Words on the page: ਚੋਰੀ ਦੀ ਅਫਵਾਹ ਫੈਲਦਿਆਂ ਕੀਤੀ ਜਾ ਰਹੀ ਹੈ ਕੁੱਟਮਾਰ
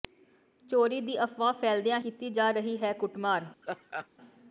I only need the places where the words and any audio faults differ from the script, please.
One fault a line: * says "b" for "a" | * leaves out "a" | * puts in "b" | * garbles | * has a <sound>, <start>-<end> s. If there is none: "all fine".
* has a laugh, 3.6-4.1 s